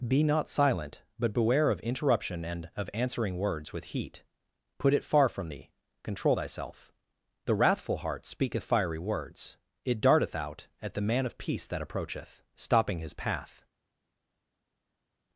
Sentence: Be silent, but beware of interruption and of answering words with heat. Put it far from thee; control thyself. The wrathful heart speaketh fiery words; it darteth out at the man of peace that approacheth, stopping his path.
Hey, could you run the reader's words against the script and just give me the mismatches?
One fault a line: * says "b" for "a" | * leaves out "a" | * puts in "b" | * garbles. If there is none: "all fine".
* puts in "not"